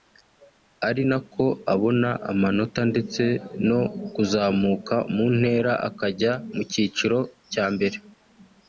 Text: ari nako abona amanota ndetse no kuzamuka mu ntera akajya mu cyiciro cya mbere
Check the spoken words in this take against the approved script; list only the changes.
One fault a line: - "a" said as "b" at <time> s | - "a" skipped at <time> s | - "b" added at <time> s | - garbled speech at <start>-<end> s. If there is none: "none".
none